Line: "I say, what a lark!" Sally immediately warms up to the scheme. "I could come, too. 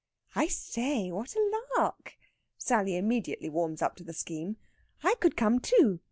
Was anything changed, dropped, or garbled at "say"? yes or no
no